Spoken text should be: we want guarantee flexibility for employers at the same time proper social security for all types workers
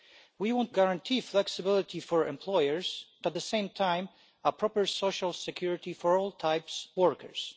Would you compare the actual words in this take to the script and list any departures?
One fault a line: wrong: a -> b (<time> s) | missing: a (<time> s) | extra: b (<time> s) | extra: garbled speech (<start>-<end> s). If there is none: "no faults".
no faults